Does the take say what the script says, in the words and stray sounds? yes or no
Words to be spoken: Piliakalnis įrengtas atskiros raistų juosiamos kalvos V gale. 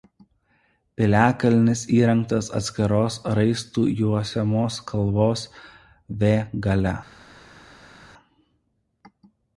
yes